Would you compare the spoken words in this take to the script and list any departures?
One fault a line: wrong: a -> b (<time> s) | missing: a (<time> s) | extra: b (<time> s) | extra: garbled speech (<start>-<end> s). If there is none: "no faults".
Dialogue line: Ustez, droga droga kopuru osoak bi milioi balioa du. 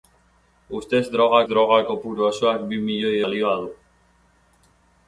no faults